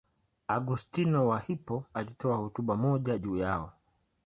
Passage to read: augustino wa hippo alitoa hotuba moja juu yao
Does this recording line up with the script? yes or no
yes